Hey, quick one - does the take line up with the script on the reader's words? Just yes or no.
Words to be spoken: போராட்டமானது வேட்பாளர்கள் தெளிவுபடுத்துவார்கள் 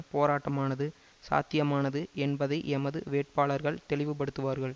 no